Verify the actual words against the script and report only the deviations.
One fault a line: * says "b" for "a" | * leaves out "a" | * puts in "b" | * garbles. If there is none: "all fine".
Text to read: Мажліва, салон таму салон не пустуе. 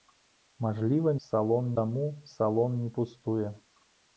all fine